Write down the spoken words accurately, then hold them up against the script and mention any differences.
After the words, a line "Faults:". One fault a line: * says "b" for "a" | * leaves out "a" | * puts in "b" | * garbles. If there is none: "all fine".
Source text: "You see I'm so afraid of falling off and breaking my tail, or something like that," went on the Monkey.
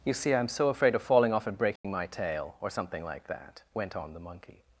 "You see I'm so afraid of falling off and breaking my tail, or something like that," went on the Monkey.
Faults:
all fine